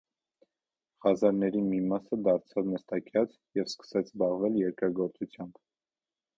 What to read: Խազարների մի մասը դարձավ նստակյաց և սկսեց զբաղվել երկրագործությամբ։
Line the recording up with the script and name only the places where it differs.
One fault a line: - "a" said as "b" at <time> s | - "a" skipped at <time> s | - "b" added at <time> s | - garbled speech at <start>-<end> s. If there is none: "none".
none